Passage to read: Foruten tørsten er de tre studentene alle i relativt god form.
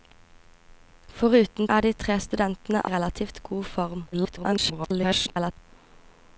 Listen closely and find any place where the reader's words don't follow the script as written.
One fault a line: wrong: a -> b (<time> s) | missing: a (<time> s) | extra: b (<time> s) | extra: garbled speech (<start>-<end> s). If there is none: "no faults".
missing: tørsten (1.7 s)
missing: alle (2.9 s)
extra: garbled speech (4.1-5.5 s)